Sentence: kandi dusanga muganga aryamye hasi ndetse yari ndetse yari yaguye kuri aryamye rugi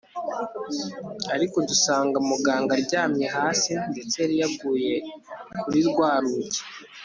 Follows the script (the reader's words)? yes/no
no